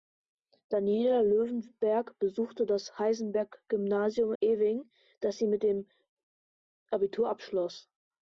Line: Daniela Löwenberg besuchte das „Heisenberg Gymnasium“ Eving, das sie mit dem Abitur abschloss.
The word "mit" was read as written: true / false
true